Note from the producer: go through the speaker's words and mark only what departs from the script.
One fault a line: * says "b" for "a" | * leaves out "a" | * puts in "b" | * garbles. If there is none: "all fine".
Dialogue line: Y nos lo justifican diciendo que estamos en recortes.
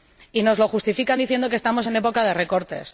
* puts in "época de"